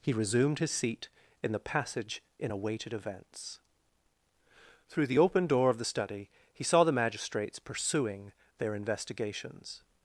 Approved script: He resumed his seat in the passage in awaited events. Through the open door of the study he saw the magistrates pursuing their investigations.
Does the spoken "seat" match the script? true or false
true